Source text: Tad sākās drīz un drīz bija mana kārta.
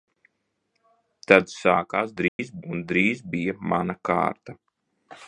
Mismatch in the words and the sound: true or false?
true